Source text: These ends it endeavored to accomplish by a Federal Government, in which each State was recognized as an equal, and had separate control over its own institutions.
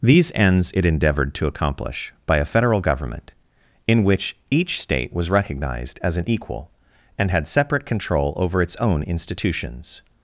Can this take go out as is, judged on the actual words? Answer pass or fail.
pass